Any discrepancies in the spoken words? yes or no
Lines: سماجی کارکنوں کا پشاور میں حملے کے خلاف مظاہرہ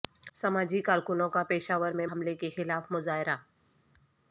no